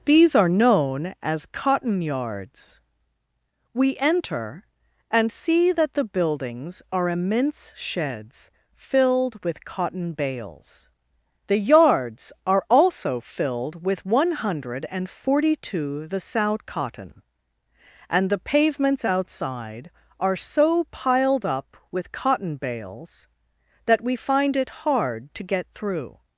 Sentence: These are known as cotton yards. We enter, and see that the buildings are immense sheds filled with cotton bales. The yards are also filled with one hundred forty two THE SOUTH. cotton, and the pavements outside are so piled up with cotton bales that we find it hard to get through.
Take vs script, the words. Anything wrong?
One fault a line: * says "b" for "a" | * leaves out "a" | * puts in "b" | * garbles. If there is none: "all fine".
all fine